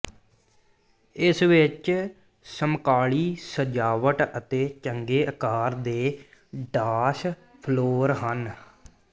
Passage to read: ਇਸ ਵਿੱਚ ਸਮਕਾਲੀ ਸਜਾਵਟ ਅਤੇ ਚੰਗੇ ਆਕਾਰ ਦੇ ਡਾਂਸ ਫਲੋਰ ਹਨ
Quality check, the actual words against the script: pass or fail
pass